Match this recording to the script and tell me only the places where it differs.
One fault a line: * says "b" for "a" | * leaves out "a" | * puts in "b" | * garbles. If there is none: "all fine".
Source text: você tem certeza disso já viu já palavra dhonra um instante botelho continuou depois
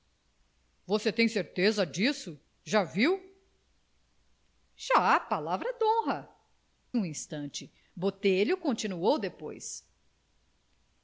all fine